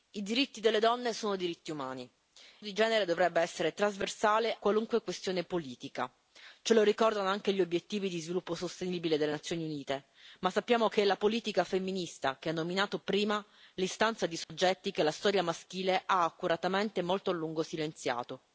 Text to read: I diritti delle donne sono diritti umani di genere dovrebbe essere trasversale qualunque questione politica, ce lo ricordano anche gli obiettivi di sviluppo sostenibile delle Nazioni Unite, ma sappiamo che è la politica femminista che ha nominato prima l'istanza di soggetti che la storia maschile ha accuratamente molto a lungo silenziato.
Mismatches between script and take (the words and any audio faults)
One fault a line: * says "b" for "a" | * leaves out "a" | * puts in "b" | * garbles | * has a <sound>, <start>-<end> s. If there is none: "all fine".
* has a dropout, 14.4-14.5 s